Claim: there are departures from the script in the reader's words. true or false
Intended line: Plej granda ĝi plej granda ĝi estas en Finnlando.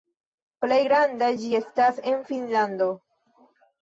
true